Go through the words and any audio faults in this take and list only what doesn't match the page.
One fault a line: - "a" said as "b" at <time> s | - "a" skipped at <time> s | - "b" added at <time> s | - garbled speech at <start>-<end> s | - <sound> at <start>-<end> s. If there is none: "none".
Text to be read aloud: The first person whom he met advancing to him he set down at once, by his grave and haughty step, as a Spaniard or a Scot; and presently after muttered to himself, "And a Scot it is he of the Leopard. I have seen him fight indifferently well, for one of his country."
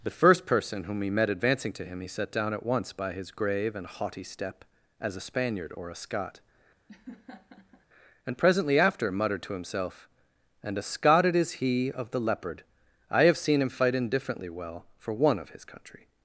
- laugh at 6.9-7.9 s